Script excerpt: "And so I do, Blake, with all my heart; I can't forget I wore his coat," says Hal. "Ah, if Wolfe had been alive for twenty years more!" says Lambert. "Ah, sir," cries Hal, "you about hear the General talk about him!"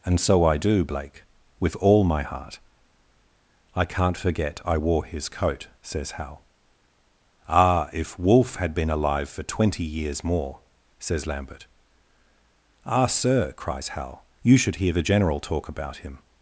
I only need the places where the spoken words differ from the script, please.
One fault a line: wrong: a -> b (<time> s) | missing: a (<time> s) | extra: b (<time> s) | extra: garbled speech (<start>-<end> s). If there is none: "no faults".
wrong: about -> should (14.6 s)